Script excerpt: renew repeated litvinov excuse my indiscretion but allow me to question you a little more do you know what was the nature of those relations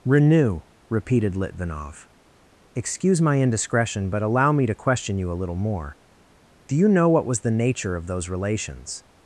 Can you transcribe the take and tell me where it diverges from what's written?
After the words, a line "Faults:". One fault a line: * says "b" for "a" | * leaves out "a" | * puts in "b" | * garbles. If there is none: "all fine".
renew repeated litvinov excuse my indiscretion but allow me to question you a little more do you know what was the nature of those relations
Faults:
all fine